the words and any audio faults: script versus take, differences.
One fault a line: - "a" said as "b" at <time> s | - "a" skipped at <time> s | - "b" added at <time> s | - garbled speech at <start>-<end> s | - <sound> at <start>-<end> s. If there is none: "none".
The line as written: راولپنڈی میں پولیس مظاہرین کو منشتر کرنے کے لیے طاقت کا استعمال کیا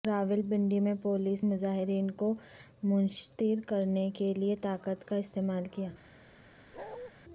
- bark at 6.7-7.1 s